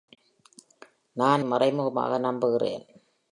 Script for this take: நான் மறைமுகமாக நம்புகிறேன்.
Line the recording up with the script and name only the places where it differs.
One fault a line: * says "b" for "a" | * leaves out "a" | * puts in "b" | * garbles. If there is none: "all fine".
all fine